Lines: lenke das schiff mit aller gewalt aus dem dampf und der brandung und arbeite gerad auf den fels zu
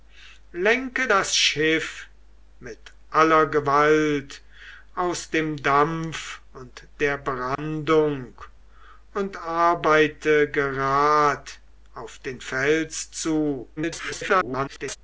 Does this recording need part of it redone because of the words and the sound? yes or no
yes